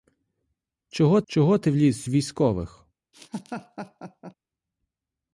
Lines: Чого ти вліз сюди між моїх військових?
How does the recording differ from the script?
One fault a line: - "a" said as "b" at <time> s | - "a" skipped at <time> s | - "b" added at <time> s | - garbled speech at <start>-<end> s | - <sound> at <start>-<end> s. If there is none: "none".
- "чого" added at 1.3 s
- "сюди між моїх" skipped at 2.0 s
- laugh at 3.1-4.3 s